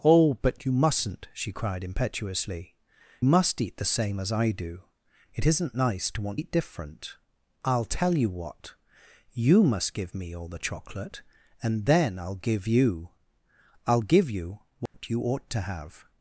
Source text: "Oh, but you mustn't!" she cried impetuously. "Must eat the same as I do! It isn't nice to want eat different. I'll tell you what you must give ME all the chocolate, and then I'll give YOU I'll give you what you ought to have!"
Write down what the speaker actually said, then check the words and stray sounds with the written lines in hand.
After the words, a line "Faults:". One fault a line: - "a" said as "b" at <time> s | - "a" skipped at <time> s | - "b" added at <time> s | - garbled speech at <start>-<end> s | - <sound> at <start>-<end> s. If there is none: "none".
"Oh, but you mustn't!" she cried impetuously. "Must eat the same as I do! It isn't nice to want eat different. I'll tell you what you must give ME all the chocolate, and then I'll give YOU I'll give you what you ought to have!"
Faults:
- dropout at 14.9-14.9 s